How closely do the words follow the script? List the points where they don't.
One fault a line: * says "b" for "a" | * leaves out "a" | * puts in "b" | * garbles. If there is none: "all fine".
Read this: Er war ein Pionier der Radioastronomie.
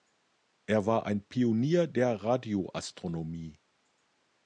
all fine